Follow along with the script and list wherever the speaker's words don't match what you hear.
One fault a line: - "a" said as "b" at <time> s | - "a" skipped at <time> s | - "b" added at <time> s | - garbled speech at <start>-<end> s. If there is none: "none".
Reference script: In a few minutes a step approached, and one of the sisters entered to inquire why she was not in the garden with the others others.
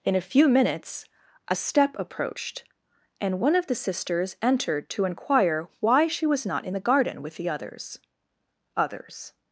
none